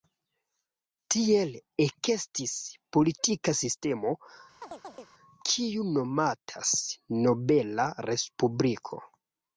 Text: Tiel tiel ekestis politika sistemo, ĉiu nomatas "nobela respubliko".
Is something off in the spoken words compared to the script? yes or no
yes